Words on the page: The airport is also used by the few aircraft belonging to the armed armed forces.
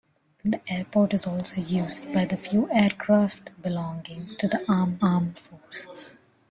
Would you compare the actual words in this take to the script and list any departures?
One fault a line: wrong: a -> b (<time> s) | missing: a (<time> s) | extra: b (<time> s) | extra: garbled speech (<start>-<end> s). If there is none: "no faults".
no faults